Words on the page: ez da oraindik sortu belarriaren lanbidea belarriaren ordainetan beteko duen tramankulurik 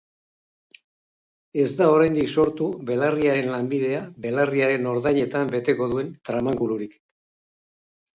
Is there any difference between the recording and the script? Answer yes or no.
no